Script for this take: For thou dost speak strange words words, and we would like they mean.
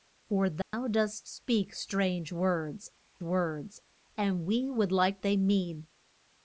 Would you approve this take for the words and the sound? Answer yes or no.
no